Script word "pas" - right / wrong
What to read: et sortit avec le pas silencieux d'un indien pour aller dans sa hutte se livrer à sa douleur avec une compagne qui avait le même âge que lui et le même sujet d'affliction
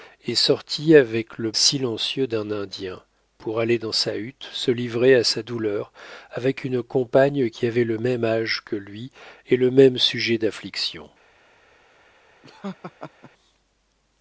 wrong